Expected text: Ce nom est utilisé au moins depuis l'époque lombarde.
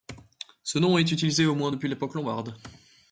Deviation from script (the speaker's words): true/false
false